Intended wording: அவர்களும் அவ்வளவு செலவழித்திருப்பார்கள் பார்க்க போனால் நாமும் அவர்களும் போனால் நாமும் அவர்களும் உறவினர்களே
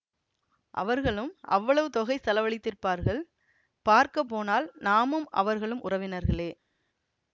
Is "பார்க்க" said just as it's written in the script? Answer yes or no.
yes